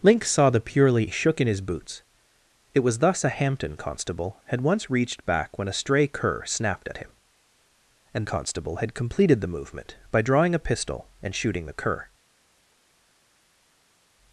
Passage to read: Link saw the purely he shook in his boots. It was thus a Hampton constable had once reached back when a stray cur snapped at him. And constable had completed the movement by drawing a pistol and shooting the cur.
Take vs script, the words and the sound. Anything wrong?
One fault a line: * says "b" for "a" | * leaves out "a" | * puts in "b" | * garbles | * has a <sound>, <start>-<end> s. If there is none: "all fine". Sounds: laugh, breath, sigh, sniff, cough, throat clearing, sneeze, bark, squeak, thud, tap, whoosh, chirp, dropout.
all fine